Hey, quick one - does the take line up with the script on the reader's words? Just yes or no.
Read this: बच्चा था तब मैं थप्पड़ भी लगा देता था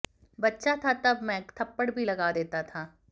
yes